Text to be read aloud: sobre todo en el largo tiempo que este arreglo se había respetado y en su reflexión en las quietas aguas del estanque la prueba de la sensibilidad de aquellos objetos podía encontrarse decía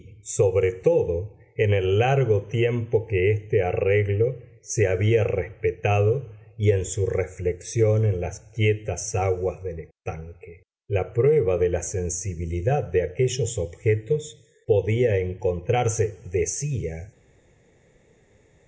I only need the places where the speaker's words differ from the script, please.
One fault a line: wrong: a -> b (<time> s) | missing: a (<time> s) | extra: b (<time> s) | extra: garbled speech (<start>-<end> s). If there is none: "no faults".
no faults